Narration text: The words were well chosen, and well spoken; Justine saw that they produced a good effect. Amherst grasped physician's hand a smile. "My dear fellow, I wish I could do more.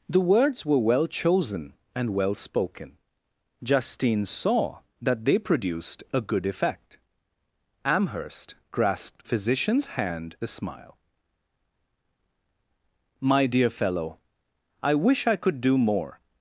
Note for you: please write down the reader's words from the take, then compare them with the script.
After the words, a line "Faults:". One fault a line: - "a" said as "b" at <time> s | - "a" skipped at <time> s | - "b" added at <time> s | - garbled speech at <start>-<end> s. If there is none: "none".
The words were well chosen, and well spoken; Justine saw that they produced a good effect. Amherst grasped physician's hand a smile. "My dear fellow, I wish I could do more.
Faults:
none